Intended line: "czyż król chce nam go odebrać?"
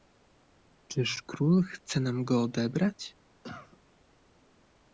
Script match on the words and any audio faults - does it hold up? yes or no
no